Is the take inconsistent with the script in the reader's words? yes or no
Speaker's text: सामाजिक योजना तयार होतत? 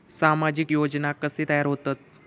yes